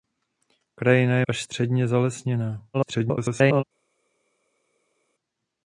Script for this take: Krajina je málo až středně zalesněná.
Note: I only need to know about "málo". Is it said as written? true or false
false